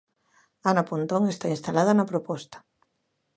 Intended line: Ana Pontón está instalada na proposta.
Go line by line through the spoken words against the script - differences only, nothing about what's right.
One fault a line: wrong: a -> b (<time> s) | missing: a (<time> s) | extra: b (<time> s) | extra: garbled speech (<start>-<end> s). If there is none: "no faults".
no faults